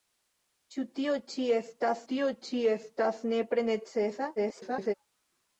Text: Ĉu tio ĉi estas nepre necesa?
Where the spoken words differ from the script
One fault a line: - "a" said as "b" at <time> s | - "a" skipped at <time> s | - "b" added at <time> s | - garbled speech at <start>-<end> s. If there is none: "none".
- "tio ĉi estas" added at 2.1 s
- garbled speech at 4.4-4.9 s